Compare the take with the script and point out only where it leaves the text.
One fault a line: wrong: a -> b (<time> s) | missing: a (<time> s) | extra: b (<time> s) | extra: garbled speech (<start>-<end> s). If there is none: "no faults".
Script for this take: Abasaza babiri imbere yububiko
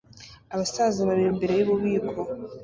no faults